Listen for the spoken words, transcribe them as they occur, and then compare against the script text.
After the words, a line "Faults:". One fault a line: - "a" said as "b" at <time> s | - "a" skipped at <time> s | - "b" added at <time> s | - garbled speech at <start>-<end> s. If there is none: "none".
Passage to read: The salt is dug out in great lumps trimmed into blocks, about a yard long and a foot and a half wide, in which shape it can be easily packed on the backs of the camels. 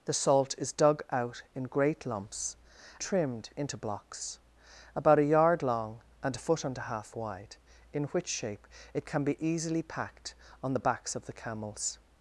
The salt is dug out in great lumps trimmed into blocks, about a yard long and a foot and a half wide, in which shape it can be easily packed on the backs of the camels.
Faults:
none